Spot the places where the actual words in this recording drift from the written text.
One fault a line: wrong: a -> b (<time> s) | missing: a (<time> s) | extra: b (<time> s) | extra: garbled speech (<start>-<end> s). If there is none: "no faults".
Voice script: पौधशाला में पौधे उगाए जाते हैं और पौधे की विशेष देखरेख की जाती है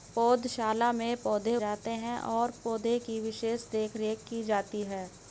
missing: उगाए (1.6 s)